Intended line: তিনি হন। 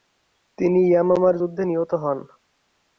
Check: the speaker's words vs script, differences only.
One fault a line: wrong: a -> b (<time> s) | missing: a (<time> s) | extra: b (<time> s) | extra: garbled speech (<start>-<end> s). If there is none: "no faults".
extra: ইয়ামামার যুদ্ধে নিহত (0.9 s)